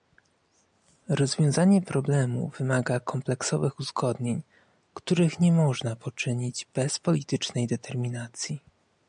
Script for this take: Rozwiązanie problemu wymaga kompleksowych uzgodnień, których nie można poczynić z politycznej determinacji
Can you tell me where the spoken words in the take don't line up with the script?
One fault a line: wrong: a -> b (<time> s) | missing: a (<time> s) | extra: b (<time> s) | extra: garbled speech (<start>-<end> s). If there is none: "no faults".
wrong: z -> bez (6.7 s)